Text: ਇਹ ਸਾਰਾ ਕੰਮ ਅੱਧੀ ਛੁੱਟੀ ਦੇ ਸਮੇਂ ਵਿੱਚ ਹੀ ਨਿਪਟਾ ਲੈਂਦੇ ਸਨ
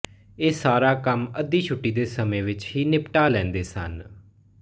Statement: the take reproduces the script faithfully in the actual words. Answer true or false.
true